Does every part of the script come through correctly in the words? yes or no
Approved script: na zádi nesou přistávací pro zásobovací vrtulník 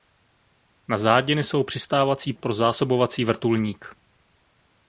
yes